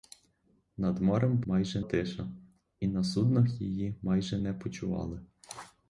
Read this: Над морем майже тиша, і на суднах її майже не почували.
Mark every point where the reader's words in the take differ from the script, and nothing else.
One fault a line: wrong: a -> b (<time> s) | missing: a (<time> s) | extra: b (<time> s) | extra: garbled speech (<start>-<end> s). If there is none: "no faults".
no faults